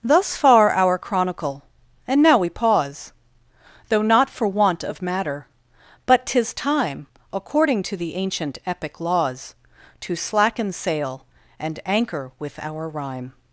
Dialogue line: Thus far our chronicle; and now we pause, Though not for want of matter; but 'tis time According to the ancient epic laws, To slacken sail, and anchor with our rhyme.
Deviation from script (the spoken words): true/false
false